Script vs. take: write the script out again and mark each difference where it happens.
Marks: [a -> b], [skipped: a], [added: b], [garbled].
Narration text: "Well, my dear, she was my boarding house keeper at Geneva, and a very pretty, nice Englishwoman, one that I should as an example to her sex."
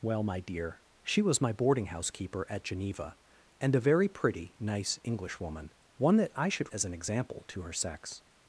"Well, my dear, she was my boarding house keeper at Geneva, and a very pretty, nice Englishwoman, one that I should as an example to her sex."